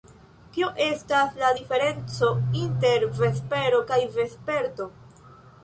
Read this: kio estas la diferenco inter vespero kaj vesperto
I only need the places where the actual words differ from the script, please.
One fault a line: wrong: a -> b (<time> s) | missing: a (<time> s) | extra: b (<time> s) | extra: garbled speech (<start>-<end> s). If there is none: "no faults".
no faults